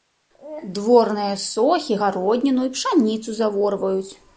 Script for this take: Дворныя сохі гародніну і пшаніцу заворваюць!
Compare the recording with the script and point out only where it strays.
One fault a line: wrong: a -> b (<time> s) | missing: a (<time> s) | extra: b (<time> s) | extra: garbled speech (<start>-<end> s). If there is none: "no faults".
no faults